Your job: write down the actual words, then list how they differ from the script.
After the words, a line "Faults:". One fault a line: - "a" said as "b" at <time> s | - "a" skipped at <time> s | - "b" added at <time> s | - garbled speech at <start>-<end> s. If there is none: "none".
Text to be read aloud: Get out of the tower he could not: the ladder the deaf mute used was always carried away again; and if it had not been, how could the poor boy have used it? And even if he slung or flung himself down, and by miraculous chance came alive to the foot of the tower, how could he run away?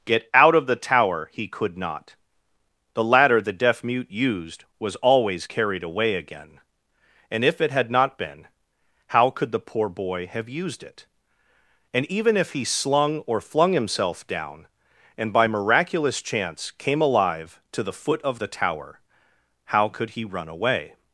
Get out of the tower he could not: the ladder the deaf mute used was always carried away again; and if it had not been, how could the poor boy have used it? And even if he slung or flung himself down, and by miraculous chance came alive to the foot of the tower, how could he run away?
Faults:
none